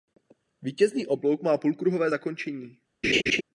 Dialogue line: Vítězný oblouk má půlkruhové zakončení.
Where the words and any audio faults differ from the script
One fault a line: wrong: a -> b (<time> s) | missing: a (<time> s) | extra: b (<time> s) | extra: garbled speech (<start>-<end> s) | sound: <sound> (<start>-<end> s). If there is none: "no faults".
sound: laugh (3.0-3.4 s)